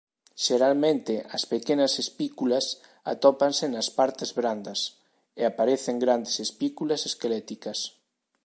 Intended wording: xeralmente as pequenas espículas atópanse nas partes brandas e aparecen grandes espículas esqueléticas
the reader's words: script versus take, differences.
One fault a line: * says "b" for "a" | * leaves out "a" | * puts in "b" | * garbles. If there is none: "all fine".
all fine